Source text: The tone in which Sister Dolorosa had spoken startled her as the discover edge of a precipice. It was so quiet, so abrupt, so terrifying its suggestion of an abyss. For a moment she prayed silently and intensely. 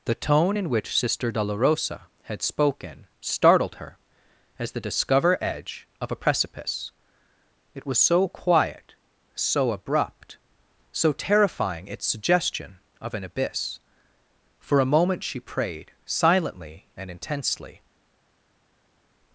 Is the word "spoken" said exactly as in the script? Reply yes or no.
yes